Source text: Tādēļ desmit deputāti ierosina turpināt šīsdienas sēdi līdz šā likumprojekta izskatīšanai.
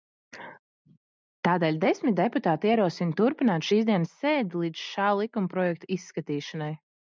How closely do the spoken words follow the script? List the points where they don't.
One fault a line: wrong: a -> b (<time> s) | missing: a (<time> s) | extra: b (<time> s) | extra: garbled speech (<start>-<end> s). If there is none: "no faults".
no faults